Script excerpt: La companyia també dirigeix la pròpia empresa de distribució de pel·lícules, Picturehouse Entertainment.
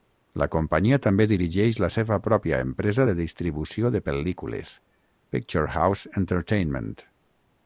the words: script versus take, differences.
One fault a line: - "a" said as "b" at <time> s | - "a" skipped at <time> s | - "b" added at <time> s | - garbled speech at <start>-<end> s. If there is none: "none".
- "seva" added at 1.9 s